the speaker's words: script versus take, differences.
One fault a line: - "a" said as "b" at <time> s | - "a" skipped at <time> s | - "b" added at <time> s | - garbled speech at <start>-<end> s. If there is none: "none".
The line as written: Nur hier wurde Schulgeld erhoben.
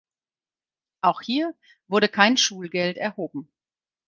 - "Nur" said as "Auch" at 1.0 s
- "kein" added at 2.1 s